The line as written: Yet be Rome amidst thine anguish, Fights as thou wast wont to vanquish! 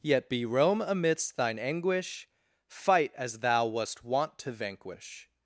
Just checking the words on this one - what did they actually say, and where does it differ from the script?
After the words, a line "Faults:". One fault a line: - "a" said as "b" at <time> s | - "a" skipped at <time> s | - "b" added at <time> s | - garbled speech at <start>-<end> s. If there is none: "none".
Yet be Rome amidst thine anguish, Fight as thou wast wont to vanquish!
Faults:
- "Fights" said as "Fight" at 2.7 s